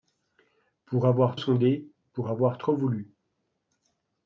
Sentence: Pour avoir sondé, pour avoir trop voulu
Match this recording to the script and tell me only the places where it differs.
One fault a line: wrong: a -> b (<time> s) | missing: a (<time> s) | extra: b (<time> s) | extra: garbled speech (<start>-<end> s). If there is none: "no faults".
no faults